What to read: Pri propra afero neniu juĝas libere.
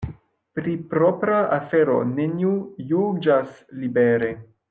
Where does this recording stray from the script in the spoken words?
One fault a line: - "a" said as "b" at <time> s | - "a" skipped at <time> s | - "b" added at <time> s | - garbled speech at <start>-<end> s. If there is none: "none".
none